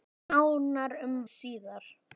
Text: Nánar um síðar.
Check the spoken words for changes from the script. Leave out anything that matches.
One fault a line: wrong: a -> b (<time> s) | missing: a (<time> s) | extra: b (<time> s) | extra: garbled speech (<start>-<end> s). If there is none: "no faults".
no faults